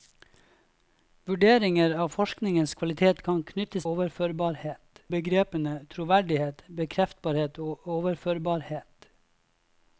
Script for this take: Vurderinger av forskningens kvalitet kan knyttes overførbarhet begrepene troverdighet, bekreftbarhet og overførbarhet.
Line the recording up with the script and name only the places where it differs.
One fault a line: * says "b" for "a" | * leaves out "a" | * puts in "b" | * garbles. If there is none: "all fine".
all fine